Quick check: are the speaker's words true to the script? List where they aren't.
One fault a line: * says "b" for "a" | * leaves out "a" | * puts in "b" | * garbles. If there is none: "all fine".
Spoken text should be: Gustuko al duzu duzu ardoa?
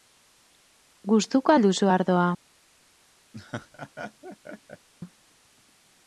* leaves out "duzu"